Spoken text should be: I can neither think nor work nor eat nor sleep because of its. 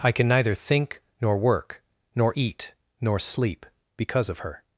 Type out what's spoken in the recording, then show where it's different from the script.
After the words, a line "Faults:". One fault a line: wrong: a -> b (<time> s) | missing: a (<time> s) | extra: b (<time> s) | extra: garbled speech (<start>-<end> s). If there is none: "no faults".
I can neither think nor work nor eat nor sleep because of her.
Faults:
wrong: its -> her (4.4 s)